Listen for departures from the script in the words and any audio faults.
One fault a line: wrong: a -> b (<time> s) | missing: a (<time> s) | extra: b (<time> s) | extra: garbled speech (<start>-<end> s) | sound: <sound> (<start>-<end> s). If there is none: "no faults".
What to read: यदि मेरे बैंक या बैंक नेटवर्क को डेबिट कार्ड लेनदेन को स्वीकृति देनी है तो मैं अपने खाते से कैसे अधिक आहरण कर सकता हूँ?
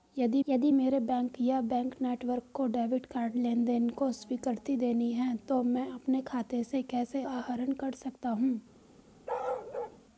extra: यदि (0.5 s)
missing: अधिक (7.2 s)
sound: bark (9.3-10.0 s)